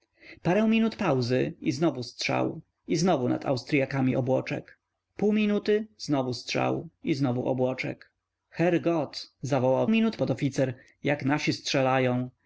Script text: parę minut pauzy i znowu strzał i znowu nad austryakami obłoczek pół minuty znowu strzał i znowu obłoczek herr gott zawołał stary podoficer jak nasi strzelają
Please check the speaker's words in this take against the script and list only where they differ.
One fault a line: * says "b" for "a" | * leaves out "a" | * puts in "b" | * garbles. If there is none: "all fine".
* says "minut" for "stary"